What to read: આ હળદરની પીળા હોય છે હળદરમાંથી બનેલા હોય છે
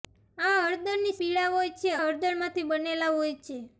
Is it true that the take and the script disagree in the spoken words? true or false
false